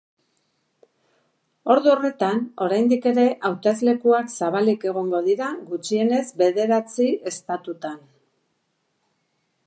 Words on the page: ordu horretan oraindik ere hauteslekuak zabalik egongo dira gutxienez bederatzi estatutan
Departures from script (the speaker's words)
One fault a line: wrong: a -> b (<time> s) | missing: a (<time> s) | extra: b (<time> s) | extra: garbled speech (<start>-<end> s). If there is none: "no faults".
no faults